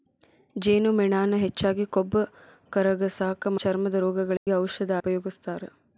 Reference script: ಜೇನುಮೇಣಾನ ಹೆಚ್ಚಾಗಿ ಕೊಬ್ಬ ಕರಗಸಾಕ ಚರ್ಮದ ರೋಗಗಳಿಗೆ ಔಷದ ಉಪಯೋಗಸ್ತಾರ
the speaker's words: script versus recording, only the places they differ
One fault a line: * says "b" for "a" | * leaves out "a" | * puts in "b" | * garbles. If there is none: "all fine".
all fine